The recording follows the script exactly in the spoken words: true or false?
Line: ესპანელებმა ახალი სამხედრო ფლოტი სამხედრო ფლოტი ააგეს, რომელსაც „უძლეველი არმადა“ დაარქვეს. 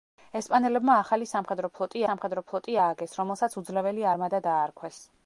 true